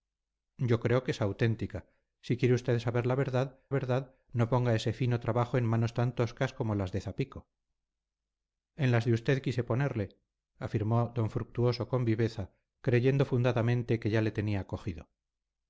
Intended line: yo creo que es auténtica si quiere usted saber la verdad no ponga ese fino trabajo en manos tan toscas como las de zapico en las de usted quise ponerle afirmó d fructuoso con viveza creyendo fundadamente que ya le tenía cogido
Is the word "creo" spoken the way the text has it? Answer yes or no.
yes